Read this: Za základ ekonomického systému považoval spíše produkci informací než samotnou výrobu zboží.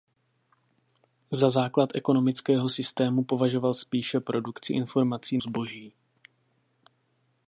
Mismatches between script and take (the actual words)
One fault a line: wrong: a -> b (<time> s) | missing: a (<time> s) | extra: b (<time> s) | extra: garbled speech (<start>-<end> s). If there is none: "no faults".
missing: než samotnou výrobu (5.4 s)